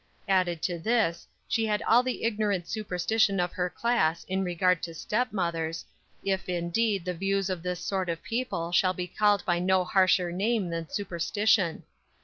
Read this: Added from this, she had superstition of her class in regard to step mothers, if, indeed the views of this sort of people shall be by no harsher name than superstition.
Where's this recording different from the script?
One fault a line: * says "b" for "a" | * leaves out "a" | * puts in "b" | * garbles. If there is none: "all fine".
* says "to" for "from"
* puts in "all the ignorant"
* puts in "called"